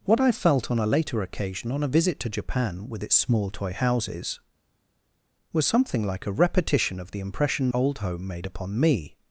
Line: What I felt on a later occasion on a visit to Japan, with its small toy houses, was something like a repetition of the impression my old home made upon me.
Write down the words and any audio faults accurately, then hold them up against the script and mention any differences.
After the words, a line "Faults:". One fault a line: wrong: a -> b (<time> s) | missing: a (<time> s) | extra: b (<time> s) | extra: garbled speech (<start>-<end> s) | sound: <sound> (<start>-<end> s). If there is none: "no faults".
What I felt on a later occasion on a visit to Japan, with its small toy houses, was something like a repetition of the impression old home made upon me.
Faults:
missing: my (7.7 s)